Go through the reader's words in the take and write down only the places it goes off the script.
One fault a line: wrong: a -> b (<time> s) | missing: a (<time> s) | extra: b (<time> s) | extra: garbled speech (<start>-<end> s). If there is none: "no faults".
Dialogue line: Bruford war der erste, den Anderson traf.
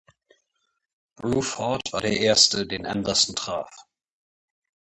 no faults